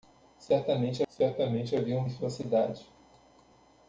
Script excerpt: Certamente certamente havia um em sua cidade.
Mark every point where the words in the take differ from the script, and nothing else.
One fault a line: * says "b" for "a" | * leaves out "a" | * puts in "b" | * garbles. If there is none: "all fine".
all fine